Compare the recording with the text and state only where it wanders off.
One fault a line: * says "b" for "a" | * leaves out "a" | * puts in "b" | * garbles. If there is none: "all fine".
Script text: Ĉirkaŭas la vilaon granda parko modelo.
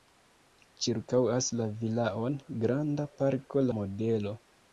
all fine